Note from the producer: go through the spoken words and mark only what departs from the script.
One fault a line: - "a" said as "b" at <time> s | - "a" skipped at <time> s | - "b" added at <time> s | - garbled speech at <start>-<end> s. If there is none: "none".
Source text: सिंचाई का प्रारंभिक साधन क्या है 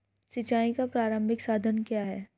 none